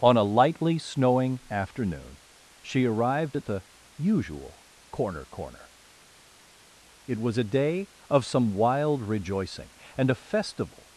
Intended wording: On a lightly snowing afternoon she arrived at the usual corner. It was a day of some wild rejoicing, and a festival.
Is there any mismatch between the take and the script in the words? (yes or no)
yes